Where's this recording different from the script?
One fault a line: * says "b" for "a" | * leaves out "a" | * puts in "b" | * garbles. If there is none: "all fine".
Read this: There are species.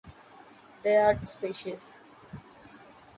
all fine